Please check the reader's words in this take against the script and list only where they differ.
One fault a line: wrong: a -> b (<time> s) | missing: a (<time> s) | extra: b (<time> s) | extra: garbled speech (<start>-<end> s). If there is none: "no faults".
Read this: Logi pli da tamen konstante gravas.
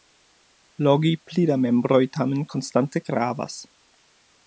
extra: membroj (1.6 s)